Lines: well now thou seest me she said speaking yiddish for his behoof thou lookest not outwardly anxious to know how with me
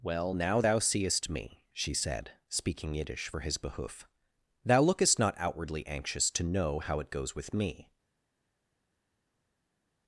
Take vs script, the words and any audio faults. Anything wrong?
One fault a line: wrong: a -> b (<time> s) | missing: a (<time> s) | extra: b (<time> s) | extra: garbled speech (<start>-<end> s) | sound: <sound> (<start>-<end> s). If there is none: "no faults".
extra: it goes (7.0 s)